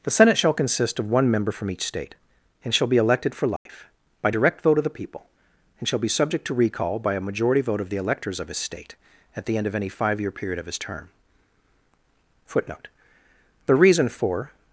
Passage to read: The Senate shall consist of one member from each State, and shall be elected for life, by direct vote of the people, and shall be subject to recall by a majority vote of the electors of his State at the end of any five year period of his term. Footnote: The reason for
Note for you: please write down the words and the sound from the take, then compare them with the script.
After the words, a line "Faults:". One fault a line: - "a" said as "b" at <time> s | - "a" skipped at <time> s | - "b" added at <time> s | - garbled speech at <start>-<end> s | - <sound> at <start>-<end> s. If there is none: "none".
The Senate shall consist of one member from each State, and shall be elected for life, by direct vote of the people, and shall be subject to recall by a majority vote of the electors of his State at the end of any five year period of his term. Footnote: The reason for
Faults:
- dropout at 3.6-3.7 s